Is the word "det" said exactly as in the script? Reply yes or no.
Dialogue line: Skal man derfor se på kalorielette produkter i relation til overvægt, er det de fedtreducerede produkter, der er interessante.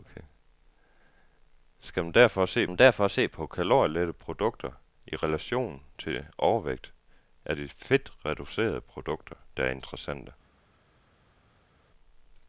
no